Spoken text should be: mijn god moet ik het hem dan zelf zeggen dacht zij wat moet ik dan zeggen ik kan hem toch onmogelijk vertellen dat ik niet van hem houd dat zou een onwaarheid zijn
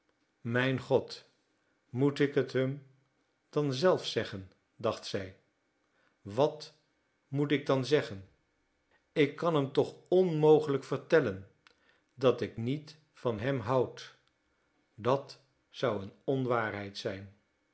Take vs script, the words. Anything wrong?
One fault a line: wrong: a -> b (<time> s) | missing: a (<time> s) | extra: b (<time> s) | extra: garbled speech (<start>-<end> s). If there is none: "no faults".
no faults